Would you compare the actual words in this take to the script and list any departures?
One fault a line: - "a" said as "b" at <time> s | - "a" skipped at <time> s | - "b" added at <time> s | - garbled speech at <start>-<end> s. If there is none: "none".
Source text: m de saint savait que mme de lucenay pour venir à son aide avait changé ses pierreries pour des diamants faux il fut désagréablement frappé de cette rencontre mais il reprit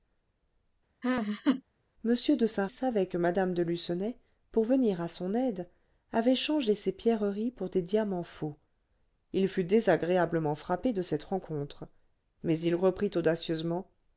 none